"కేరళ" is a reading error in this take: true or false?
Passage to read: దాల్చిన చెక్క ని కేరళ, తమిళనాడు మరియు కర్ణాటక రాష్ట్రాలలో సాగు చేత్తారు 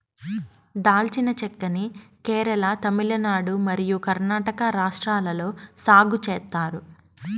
false